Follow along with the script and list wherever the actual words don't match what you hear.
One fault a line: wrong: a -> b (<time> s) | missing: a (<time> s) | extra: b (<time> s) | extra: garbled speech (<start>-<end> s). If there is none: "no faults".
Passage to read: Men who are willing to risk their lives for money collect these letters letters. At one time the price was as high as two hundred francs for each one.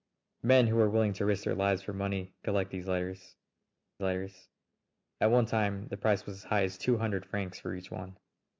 no faults